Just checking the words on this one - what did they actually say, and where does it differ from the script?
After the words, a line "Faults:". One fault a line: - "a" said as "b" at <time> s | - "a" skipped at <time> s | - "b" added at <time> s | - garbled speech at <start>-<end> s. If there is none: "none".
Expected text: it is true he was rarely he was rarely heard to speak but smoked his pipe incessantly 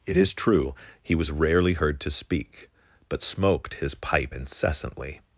it is true he was rarely heard to speak but smoked his pipe incessantly
Faults:
- "he was rarely" skipped at 1.7 s